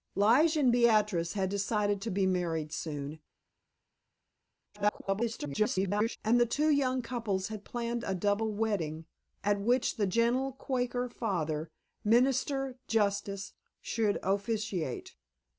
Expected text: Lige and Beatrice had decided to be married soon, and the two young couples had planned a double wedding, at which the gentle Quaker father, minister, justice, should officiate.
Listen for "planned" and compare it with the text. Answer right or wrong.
right